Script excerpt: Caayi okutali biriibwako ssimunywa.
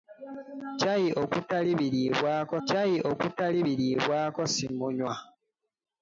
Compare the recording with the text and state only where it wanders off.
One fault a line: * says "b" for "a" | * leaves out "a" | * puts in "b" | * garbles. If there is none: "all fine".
* puts in "caayi okutali biriibwako"